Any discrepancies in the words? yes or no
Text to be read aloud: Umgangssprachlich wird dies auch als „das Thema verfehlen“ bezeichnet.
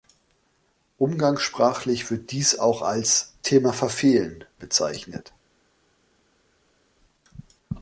yes